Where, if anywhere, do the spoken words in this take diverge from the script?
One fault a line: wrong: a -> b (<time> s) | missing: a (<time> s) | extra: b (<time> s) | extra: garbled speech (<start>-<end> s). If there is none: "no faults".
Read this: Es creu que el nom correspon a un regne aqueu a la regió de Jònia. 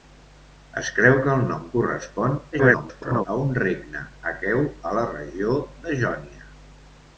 extra: garbled speech (2.5-3.3 s)